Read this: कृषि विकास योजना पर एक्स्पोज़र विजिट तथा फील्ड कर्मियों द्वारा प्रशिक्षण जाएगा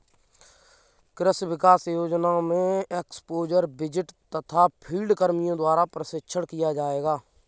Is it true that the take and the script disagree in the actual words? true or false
true